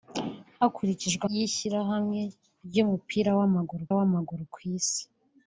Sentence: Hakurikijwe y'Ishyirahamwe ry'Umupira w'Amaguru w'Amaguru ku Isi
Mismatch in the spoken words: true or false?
false